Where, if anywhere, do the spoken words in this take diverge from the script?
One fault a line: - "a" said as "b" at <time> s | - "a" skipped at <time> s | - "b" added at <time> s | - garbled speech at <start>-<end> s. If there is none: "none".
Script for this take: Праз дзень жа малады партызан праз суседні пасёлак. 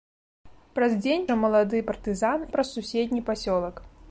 none